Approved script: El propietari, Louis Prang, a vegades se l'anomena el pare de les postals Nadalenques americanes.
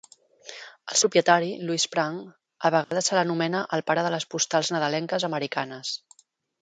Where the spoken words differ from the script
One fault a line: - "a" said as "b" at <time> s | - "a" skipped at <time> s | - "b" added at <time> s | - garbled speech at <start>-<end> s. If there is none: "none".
none